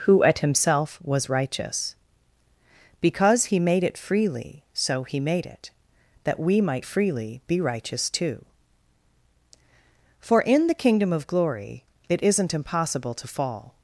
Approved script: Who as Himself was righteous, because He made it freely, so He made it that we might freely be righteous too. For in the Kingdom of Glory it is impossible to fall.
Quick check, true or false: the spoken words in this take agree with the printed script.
false